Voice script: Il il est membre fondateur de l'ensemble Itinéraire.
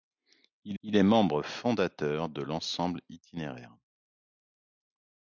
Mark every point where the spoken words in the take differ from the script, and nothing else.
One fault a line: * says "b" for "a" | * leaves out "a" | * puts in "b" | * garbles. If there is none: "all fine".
all fine